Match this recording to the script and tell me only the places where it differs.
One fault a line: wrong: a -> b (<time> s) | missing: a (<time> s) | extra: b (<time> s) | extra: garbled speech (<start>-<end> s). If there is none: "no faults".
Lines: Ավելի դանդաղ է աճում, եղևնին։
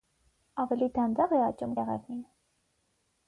no faults